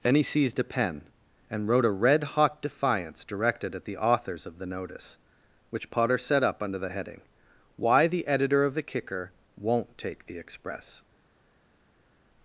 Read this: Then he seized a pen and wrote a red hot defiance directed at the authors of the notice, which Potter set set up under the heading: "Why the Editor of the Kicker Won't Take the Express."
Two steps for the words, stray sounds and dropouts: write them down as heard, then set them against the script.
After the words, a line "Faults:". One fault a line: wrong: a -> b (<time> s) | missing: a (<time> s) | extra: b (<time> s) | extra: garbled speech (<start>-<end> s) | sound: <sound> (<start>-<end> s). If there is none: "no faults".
Then he seized a pen and wrote a red hot defiance directed at the authors of the notice, which Potter set up under the heading: "Why the Editor of the Kicker Won't Take the Express."
Faults:
missing: set (6.4 s)